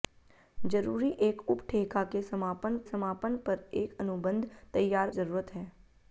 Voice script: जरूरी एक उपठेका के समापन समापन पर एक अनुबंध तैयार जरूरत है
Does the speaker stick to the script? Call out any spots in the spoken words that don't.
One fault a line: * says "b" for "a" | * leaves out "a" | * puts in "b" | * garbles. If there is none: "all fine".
all fine